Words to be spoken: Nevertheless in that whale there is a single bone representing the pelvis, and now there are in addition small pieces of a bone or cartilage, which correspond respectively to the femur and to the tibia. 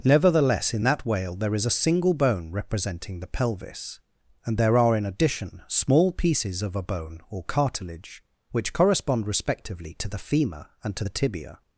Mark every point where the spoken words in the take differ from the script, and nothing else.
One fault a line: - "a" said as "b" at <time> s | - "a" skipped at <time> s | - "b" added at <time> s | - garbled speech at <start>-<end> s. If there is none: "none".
- "now" skipped at 4.6 s